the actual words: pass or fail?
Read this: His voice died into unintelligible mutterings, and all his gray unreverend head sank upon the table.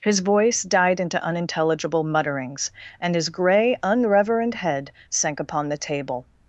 fail